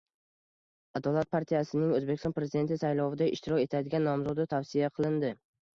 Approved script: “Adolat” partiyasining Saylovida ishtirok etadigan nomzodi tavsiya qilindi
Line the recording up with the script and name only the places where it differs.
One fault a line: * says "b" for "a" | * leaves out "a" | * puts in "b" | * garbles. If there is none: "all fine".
* puts in "O‘zbekiston Prezidenti"